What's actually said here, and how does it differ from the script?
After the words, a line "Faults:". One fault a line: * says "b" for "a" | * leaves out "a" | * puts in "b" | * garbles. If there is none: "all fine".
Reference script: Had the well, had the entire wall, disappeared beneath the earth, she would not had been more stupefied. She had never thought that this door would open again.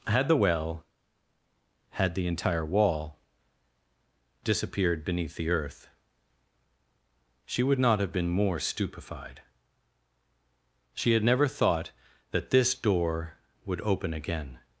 Had the well, had the entire wall, disappeared beneath the earth, she would not have been more stupefied. She had never thought that this door would open again.
Faults:
* says "have" for "had"